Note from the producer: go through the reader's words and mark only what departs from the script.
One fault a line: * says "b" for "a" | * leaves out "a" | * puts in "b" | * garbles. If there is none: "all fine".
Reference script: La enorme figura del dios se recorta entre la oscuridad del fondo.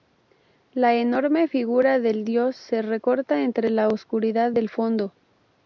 all fine